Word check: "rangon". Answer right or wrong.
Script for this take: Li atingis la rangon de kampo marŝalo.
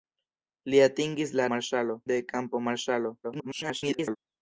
wrong